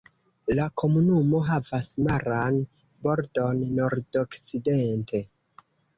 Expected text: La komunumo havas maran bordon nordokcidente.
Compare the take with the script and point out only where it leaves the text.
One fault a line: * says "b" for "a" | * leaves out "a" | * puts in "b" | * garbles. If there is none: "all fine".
all fine